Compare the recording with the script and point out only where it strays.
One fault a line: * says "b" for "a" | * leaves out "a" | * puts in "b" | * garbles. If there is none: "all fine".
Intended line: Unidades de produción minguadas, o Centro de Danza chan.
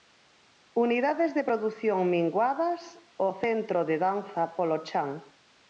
* puts in "polo"